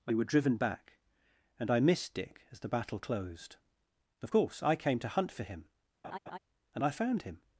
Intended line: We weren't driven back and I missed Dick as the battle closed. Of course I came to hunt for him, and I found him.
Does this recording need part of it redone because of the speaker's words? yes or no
yes